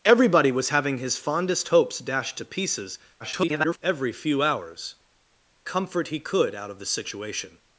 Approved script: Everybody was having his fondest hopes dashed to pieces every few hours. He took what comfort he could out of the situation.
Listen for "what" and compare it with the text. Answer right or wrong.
wrong